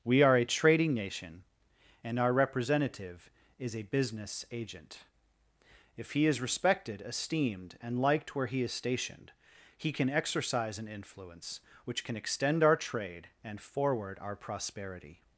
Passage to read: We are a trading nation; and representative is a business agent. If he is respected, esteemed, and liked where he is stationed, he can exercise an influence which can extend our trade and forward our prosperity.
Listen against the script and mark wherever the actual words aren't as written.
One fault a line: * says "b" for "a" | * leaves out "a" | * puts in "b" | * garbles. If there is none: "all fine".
* puts in "our"